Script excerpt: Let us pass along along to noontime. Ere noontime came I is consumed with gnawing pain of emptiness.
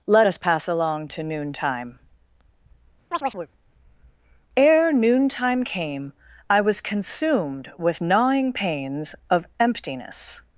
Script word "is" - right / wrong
wrong